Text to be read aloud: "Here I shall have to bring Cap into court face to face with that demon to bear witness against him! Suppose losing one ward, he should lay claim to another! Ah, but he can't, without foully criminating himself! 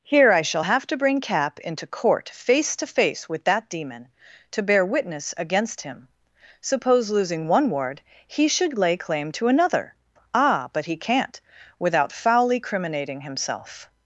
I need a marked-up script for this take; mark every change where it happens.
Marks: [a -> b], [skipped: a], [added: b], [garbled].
"Here I shall have to bring Cap into court face to face with that demon to bear witness against him! Suppose losing one ward, he should lay claim to another! Ah, but he can't, without foully criminating himself!